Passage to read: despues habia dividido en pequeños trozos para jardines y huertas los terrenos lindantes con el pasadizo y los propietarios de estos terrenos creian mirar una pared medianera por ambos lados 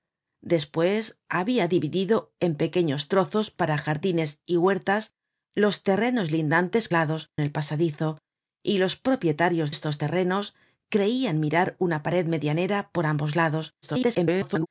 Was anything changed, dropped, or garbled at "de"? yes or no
yes